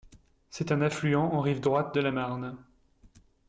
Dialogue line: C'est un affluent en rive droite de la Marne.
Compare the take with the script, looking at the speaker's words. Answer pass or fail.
pass